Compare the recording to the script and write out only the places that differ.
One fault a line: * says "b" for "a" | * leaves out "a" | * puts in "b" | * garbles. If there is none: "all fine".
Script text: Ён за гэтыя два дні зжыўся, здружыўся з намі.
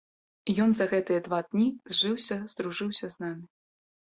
all fine